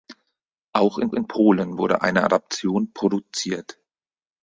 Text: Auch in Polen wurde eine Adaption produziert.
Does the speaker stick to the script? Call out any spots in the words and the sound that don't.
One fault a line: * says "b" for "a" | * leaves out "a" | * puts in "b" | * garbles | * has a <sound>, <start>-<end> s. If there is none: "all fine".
* puts in "in"